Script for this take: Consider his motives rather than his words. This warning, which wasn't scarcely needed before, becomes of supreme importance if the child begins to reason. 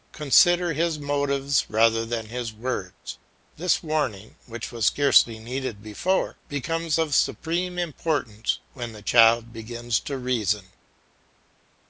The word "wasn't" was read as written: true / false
false